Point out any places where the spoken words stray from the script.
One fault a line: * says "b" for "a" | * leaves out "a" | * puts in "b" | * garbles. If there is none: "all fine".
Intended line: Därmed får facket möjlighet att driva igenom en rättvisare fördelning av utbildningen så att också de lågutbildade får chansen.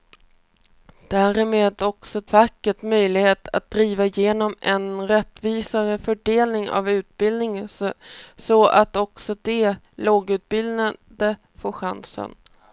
* says "också" for "får"